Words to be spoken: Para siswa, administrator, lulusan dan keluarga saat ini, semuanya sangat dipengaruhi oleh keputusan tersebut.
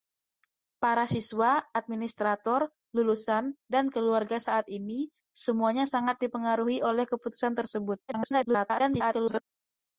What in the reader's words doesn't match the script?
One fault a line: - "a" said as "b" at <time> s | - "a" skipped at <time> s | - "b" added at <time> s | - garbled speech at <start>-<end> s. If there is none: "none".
- garbled speech at 8.1-9.4 s